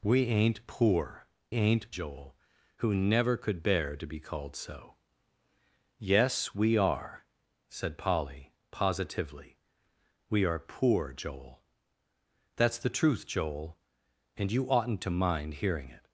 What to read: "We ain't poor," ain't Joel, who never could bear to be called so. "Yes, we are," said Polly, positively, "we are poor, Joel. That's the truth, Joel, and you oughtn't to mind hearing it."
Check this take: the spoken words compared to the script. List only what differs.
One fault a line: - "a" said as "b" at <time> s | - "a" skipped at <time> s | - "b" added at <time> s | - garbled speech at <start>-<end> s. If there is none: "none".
none